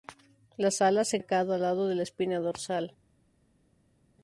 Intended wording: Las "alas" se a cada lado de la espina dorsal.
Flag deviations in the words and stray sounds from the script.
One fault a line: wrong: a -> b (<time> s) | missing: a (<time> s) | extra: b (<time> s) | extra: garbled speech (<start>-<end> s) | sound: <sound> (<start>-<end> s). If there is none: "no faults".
no faults